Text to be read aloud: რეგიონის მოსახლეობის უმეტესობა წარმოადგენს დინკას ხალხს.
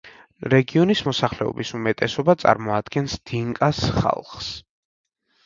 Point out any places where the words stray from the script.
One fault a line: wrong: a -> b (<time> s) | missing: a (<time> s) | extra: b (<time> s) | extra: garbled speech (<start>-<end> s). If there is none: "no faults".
no faults